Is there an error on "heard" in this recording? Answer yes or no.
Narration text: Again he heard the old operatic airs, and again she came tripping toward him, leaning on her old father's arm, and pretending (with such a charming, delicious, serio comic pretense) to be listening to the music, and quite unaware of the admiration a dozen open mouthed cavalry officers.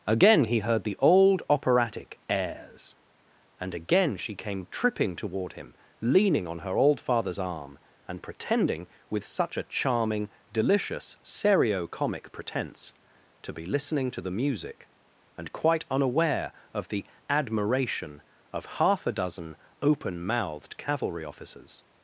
no